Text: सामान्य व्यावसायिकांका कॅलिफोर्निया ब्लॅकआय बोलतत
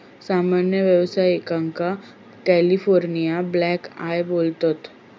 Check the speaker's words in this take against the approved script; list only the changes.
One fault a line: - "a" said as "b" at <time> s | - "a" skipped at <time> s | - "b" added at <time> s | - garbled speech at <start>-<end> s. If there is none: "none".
none